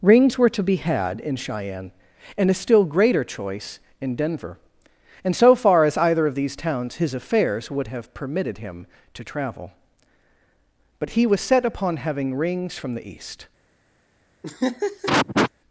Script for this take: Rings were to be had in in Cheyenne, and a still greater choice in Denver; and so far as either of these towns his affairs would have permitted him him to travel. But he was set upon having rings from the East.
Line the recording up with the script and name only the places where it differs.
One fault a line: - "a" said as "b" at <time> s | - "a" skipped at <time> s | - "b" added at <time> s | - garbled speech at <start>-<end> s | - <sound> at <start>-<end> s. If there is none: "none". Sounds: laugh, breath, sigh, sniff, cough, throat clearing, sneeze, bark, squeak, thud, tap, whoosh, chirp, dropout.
- "in" skipped at 1.4 s
- "him" skipped at 8.9 s
- laugh at 14.4-15.5 s